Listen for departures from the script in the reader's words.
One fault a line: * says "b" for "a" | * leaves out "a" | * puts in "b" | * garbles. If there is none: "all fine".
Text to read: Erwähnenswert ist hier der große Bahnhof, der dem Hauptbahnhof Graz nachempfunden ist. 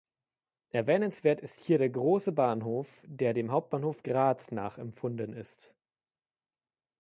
all fine